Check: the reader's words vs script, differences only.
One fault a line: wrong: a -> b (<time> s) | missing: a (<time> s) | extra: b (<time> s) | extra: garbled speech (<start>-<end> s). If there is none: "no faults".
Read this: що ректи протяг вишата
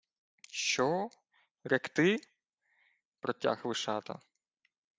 no faults